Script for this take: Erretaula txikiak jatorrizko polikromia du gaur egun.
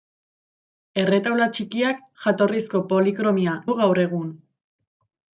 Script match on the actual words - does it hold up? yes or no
yes